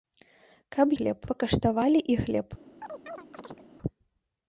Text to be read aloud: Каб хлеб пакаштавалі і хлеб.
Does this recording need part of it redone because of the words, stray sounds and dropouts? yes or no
yes